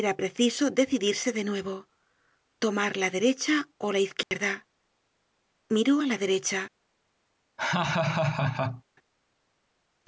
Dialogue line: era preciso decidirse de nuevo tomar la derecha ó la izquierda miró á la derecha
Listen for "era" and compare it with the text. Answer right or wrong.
right